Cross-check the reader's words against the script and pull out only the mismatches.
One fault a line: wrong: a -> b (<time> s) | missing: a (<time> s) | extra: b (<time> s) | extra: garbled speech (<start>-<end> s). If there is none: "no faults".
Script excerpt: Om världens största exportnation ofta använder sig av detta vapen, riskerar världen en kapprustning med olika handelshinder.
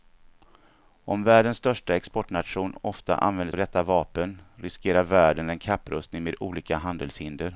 missing: sig (3.5 s)